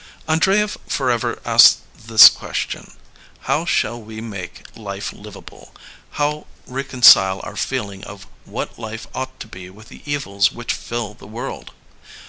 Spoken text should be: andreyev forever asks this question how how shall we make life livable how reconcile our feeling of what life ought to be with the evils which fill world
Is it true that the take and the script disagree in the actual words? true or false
true